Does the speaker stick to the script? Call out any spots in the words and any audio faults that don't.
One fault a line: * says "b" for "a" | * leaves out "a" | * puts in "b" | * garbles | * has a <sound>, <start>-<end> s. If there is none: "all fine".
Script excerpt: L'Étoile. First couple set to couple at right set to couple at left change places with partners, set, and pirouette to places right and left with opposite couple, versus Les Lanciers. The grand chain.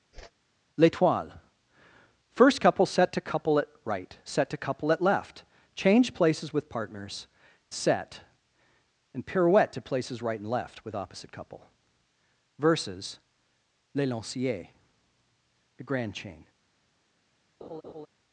* has a whoosh, 0.1-0.3 s
* has a laugh, 17.6-18.1 s